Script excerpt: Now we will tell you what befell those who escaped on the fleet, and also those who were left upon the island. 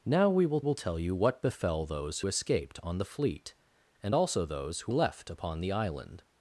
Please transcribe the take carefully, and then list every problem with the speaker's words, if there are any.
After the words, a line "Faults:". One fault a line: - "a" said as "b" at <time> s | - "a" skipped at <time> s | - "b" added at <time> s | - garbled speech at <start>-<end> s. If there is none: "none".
Now we will will tell you what befell those escaped on the fleet, and also those who left upon the island.
Faults:
- "will" added at 0.6 s
- "who" skipped at 2.2 s
- "were" skipped at 4.9 s